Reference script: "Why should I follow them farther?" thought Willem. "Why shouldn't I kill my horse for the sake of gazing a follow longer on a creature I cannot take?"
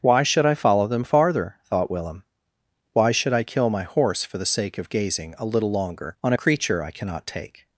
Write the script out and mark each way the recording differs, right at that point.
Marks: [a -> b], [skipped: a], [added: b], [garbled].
"Why should I follow them farther?" thought Willem. "Why [shouldn't -> should] I kill my horse for the sake of gazing a [follow -> little] longer on a creature I cannot take?"